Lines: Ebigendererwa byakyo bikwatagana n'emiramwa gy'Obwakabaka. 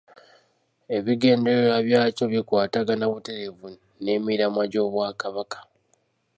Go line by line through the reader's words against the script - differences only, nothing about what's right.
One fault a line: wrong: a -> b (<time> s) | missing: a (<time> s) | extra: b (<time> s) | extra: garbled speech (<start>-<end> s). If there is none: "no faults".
extra: butereevu (3.1 s)